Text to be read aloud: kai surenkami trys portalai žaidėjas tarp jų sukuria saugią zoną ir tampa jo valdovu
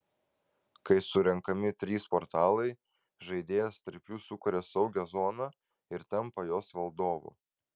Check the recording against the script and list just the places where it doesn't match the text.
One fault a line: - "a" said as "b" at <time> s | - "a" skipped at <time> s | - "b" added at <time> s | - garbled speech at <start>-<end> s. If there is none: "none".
- "jo" said as "jos" at 6.5 s